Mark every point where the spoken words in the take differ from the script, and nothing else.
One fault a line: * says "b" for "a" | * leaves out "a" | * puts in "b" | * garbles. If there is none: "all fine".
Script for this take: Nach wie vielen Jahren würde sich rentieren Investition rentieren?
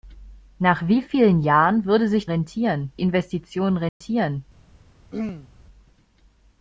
all fine